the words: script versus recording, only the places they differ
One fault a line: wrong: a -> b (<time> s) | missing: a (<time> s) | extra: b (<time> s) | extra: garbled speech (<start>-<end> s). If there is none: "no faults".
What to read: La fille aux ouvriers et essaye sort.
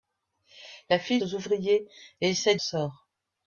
no faults